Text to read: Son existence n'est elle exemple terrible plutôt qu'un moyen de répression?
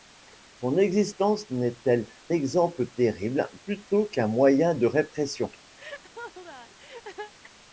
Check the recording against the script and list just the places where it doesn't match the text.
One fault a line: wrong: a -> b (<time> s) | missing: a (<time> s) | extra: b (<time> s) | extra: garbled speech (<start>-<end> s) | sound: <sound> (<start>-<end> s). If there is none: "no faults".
sound: laugh (5.8-7.3 s)